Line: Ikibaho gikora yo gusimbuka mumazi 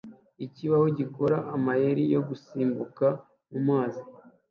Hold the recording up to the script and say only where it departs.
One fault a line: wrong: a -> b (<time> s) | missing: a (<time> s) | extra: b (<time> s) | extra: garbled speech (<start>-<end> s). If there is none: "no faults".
extra: amayeri (1.6 s)